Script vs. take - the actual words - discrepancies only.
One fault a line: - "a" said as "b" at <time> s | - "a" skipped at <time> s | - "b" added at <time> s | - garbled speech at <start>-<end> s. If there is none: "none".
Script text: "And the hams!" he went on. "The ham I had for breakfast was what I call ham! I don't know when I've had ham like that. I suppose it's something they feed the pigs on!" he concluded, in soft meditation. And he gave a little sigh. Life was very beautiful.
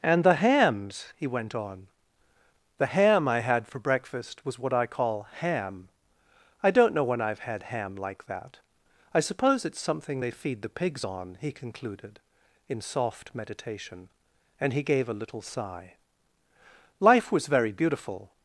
none